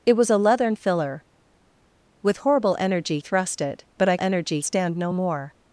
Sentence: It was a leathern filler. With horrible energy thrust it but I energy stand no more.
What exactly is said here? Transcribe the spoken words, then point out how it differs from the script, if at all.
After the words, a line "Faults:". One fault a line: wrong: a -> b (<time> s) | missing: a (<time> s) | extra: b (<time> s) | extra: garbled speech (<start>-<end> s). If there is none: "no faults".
It was a leathern filler. With horrible energy thrust it but I energy stand no more.
Faults:
no faults